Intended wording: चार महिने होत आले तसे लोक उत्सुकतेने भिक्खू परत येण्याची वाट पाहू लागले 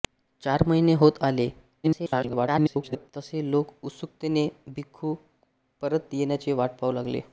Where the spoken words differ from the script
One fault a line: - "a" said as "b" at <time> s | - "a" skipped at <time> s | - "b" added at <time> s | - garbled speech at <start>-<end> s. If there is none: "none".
- garbled speech at 1.8-3.1 s